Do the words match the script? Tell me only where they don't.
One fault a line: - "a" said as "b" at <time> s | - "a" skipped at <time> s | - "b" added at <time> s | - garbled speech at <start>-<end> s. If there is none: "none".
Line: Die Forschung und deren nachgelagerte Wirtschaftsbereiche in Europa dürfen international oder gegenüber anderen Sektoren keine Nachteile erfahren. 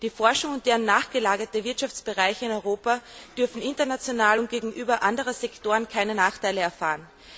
- "oder" said as "und" at 4.4 s